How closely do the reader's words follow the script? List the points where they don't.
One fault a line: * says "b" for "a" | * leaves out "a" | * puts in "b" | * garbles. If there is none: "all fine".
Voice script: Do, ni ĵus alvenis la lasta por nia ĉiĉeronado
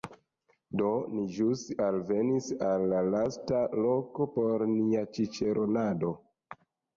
* puts in "al"
* puts in "loko"